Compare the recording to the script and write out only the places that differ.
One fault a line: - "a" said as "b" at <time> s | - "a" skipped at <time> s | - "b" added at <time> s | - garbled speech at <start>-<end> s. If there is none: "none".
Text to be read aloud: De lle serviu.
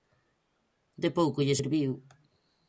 - "pouco" added at 1.2 s